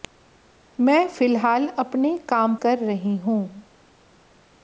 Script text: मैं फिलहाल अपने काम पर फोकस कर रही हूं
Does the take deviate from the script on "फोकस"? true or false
true